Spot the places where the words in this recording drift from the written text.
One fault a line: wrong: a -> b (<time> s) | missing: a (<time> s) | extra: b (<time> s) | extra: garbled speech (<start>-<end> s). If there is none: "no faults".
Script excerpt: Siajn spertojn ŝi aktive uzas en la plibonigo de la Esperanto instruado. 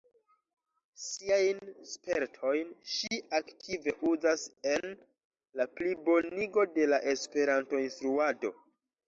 no faults